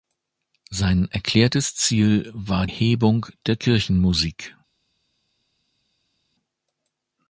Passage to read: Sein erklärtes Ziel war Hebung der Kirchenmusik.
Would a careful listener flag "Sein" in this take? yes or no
no